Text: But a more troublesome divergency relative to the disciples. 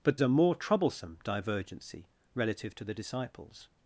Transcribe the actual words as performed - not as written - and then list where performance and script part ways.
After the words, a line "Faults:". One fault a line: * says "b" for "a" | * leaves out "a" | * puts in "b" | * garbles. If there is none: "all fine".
But a more troublesome divergency relative to the disciples.
Faults:
all fine